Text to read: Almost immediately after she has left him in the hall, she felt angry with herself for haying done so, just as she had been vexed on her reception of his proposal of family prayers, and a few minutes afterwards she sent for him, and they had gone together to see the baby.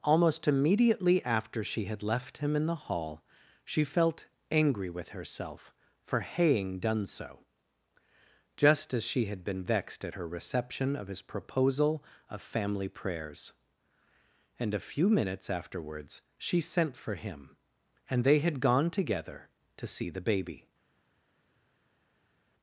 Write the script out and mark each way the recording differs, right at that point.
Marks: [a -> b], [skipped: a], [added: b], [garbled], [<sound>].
Almost immediately after she [has -> had] left him in the hall, she felt angry with herself for haying done so, just as she had been vexed [on -> at] her reception of his proposal of family prayers, and a few minutes afterwards she sent for him, and they had gone together to see the baby.